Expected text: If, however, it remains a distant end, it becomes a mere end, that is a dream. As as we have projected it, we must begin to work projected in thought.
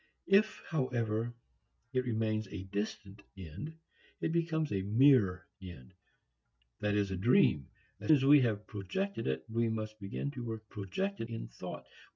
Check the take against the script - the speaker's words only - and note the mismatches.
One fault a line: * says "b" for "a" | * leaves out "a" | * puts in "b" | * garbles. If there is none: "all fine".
all fine